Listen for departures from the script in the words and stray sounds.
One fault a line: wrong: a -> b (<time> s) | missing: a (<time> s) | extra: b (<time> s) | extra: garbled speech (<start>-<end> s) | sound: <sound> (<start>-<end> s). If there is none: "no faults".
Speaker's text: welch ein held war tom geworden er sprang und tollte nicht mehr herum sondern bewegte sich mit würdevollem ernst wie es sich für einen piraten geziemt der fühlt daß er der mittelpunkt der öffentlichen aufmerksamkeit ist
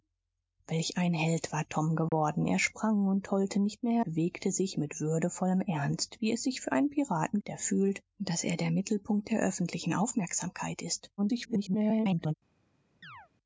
sound: dropout (2.1-2.1 s)
missing: herum sondern (4.0 s)
missing: geziemt (7.4 s)
extra: garbled speech (11.2-12.3 s)
sound: chirp (13.0-13.3 s)